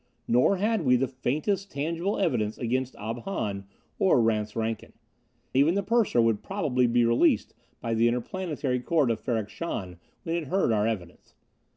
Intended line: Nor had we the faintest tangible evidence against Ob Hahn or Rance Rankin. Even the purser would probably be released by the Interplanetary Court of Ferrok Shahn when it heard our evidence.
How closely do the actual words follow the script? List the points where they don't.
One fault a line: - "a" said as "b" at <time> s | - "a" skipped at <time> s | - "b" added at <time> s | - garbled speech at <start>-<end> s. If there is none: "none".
none